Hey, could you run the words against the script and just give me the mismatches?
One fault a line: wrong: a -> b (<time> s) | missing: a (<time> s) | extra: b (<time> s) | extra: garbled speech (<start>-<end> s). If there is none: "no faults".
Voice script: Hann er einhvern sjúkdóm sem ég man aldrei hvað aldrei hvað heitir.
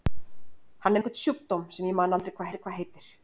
no faults